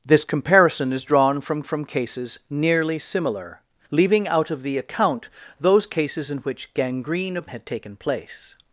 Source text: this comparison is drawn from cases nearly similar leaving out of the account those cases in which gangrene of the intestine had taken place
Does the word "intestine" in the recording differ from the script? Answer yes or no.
yes